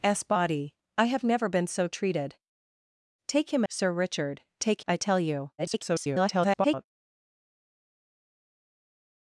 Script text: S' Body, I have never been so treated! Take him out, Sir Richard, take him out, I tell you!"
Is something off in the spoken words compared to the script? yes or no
yes